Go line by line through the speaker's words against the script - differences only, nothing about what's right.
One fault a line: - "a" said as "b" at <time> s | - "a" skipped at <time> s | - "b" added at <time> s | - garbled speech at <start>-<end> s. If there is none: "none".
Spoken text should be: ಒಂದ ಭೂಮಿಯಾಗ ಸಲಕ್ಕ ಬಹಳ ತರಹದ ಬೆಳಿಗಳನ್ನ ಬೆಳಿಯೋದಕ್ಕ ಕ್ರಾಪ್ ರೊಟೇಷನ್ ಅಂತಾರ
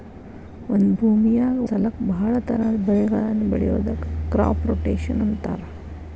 none